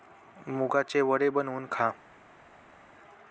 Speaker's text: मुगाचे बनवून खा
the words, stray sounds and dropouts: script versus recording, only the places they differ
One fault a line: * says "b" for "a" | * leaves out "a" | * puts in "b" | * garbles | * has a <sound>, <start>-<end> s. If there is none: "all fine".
* puts in "वडे"